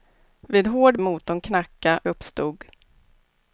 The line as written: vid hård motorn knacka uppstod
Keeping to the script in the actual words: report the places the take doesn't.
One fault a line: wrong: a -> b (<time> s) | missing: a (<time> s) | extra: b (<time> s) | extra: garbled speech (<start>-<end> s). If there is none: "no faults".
no faults